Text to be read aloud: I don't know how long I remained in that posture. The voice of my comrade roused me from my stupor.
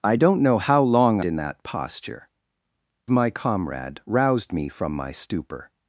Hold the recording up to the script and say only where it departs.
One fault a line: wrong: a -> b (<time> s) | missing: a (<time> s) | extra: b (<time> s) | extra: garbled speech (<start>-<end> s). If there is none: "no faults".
missing: I remained (1.2 s)
missing: The voice of (2.3 s)